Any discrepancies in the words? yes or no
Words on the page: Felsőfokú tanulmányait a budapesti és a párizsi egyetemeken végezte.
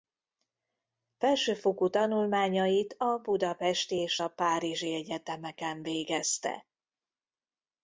no